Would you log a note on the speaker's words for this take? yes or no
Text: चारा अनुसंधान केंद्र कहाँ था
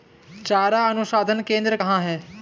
yes